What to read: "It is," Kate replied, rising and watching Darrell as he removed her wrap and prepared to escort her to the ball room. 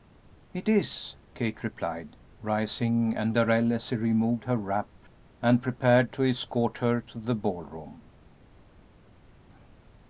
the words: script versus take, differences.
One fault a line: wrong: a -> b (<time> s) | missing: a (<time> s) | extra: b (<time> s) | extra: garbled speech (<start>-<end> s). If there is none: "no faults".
missing: watching (3.4 s)